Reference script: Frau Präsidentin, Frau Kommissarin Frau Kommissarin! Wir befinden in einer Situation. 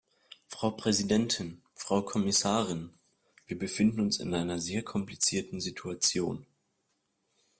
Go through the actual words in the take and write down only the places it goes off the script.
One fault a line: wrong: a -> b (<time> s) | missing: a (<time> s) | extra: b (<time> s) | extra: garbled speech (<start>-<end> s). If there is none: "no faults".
missing: Frau Kommissarin (2.9 s)
extra: uns (4.0 s)
extra: sehr komplizierten (4.6 s)